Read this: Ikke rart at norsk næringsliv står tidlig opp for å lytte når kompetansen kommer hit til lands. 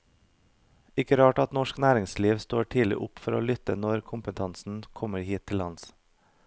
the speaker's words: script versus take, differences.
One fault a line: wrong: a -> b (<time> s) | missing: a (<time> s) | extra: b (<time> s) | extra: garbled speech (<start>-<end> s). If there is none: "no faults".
no faults